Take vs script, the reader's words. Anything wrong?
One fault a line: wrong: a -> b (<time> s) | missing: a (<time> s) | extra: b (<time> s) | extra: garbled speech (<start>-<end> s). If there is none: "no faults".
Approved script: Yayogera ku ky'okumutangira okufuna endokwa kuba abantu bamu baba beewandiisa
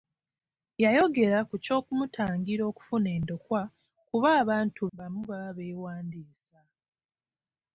no faults